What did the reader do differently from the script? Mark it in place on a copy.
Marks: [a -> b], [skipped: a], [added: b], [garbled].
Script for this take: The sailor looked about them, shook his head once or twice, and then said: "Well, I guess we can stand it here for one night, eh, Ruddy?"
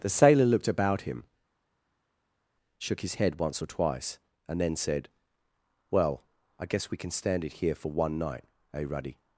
The sailor looked about [them, -> him] shook his head once or twice, and then said: "Well, I guess we can stand it here for one night, eh, Ruddy?"